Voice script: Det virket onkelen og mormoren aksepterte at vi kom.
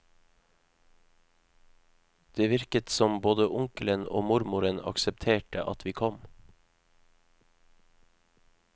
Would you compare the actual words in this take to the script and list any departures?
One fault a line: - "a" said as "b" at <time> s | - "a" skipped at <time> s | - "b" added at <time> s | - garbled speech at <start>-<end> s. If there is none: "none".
- "som både" added at 2.9 s